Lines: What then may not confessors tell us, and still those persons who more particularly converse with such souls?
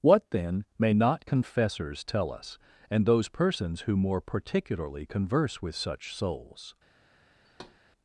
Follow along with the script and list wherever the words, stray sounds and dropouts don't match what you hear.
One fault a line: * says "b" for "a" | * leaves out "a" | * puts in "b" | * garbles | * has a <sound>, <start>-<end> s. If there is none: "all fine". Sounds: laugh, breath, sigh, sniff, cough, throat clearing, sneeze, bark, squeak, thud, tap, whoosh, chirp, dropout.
* leaves out "still"
* has a thud, 7.4-7.8 s